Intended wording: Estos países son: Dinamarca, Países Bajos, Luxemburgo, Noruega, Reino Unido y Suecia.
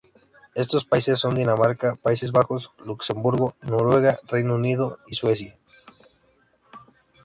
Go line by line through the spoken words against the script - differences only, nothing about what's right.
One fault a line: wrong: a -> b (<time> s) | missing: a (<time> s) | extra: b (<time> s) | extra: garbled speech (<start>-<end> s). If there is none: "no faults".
no faults